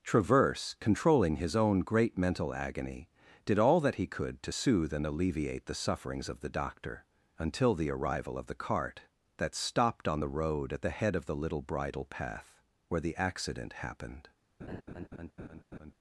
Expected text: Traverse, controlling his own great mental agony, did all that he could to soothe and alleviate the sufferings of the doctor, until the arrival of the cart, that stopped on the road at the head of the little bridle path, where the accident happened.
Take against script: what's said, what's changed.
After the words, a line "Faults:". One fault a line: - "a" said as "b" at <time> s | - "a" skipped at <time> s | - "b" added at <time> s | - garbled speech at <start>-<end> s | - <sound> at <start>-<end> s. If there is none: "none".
Traverse, controlling his own great mental agony, did all that he could to soothe and alleviate the sufferings of the doctor, until the arrival of the cart, that stopped on the road at the head of the little bridle path, where the accident happened.
Faults:
- laugh at 14.6-15.9 s